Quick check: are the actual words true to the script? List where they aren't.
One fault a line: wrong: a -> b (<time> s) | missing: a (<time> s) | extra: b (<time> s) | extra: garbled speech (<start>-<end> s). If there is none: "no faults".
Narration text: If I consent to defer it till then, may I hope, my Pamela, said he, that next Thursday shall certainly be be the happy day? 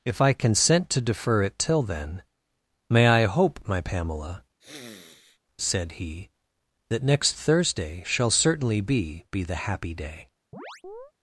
no faults